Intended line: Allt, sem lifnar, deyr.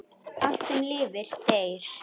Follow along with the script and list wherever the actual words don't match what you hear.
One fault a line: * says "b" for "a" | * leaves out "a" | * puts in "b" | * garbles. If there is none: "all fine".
all fine